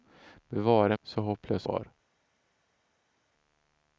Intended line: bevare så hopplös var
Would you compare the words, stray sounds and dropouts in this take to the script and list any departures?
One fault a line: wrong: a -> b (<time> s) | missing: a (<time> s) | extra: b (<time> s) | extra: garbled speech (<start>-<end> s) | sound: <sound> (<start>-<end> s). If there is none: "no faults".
no faults